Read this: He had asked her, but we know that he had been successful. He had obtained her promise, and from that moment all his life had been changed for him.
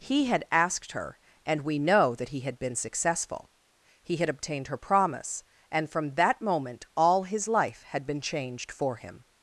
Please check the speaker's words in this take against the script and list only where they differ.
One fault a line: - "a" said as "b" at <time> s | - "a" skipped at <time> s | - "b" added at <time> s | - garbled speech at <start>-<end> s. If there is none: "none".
- "but" said as "and" at 1.4 s